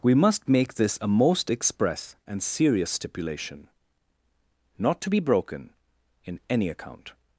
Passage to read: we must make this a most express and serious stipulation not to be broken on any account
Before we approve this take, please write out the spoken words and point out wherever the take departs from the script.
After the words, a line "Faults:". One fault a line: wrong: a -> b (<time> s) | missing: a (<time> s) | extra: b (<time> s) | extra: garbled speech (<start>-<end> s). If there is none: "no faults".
we must make this a most express and serious stipulation not to be broken in any account
Faults:
wrong: on -> in (6.2 s)